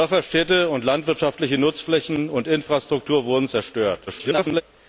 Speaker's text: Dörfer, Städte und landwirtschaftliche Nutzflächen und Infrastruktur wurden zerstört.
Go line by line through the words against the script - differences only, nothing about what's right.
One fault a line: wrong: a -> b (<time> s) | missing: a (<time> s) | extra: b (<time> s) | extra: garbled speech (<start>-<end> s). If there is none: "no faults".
extra: garbled speech (4.1-4.6 s)